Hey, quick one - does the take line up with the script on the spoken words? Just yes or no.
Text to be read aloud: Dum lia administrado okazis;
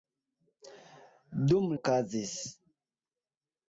no